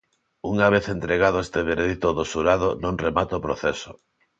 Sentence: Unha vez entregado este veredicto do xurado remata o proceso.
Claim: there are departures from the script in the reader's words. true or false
true